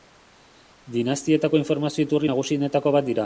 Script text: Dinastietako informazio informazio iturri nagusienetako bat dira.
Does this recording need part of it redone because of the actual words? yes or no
yes